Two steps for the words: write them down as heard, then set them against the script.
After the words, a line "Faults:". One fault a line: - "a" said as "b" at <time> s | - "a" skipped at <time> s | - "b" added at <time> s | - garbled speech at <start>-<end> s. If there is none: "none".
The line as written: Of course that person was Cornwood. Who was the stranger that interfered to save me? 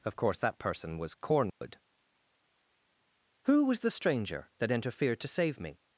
Of course that person was Cornwood. Who was the stranger that interfered to save me?
Faults:
none